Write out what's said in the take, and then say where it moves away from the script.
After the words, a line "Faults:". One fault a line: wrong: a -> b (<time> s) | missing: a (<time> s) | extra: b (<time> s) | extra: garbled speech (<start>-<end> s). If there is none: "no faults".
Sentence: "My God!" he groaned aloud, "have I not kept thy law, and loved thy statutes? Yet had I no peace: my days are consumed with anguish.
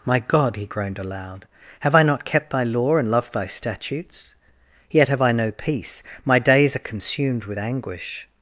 "My God!" he groaned aloud, "have I not kept thy law, and loved thy statutes? Yet have I no peace: my days are consumed with anguish.
Faults:
wrong: had -> have (5.1 s)